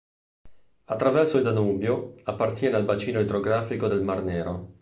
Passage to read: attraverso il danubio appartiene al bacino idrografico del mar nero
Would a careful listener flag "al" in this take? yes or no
no